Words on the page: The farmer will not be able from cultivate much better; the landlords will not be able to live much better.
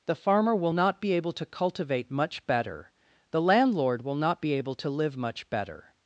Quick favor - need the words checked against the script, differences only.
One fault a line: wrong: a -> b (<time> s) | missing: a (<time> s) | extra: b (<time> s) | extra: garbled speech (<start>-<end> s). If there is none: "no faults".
wrong: from -> to (1.3 s)
wrong: landlords -> landlord (3.4 s)